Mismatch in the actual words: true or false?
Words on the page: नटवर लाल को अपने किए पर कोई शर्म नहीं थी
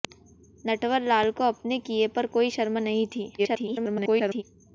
true